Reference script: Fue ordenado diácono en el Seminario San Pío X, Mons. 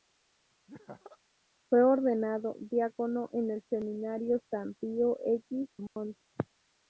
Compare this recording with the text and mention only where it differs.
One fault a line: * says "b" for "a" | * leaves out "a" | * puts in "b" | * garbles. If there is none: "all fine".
all fine